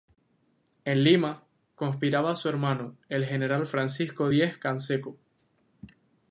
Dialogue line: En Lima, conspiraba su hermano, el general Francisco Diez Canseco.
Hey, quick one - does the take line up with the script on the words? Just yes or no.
yes